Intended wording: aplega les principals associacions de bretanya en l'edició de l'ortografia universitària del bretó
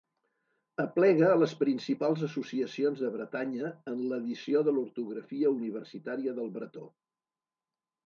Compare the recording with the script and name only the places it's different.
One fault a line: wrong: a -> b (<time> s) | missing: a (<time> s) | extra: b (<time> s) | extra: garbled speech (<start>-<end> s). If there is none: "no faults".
no faults